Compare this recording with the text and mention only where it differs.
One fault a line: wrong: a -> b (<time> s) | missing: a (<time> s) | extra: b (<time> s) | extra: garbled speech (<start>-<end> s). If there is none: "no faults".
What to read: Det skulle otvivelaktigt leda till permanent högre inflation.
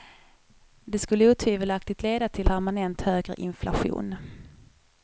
no faults